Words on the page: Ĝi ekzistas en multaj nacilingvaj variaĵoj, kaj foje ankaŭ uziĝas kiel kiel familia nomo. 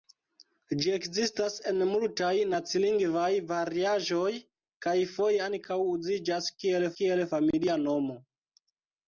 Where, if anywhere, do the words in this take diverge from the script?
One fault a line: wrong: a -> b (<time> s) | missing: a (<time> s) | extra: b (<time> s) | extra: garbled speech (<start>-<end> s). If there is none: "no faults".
no faults